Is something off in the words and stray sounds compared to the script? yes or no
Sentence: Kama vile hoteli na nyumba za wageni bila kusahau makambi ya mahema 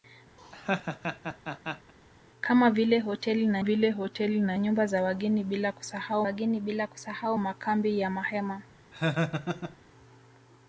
yes